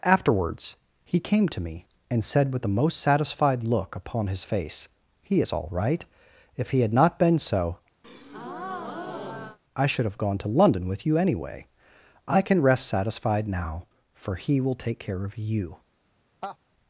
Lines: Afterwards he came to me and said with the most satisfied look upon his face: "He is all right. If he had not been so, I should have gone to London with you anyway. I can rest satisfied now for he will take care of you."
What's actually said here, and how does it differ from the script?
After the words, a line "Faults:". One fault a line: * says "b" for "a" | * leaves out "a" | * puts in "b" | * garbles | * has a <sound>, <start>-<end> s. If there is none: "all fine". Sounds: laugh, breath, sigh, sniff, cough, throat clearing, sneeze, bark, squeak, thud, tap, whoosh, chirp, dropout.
Afterwards he came to me and said with the most satisfied look upon his face: "He is all right. If he had not been so, I should have gone to London with you anyway. I can rest satisfied now for he will take care of you."
Faults:
* has a breath, 8.0-9.6 s
* has a laugh, 16.4-16.6 s